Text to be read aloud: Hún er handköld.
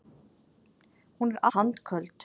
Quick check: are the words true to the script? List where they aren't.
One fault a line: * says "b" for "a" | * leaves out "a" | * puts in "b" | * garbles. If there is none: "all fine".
all fine